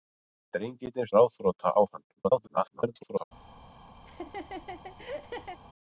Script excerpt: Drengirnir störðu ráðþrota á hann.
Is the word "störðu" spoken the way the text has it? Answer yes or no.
no